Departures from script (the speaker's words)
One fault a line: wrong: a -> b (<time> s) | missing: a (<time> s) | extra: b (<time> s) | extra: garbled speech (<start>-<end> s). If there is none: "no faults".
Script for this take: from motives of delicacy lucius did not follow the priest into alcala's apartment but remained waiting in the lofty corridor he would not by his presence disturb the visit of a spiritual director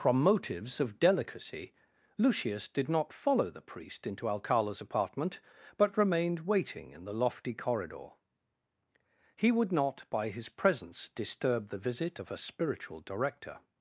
no faults